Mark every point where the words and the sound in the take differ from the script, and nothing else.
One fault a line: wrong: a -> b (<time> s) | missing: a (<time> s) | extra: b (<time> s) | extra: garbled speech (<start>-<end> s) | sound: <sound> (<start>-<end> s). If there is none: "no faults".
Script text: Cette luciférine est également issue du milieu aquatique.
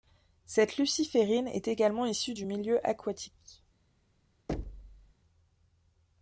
sound: thud (4.5-5.1 s)